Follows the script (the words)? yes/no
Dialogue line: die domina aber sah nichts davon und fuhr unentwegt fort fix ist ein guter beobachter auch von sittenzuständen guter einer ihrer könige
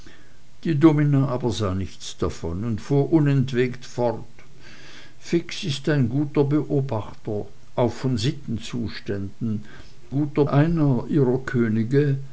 yes